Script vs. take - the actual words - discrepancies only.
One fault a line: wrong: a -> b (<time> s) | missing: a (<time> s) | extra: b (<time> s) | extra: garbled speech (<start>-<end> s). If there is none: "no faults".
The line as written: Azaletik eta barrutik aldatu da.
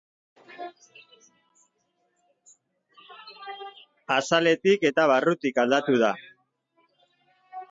no faults